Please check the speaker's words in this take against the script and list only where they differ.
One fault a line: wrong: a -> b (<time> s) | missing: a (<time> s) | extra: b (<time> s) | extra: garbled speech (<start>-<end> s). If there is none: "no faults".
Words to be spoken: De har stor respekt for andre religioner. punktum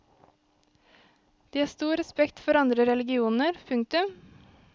no faults